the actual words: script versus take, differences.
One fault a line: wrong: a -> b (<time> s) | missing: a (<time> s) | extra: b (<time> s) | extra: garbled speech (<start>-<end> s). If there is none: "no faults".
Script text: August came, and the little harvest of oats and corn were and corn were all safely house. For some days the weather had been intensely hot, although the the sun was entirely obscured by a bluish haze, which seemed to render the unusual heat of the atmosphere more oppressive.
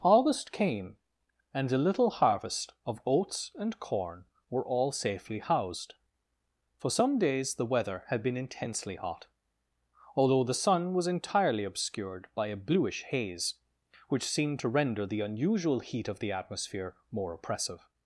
missing: and corn were (4.7 s)
wrong: house -> housed (5.4 s)
missing: the (10.6 s)